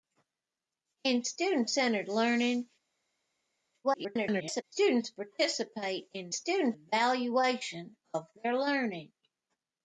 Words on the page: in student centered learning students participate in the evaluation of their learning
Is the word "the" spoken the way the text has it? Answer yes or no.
no